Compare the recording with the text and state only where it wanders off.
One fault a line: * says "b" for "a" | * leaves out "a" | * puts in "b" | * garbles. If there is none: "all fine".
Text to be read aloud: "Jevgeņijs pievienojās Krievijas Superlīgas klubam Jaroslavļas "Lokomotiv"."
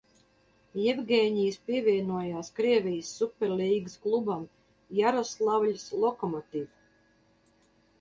all fine